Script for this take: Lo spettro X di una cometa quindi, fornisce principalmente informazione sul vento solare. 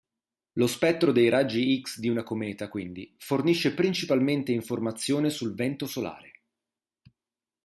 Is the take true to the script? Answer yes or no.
no